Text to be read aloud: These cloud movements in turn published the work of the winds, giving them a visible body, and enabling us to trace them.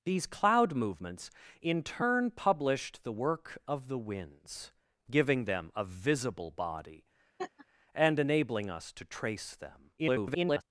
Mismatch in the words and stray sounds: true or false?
true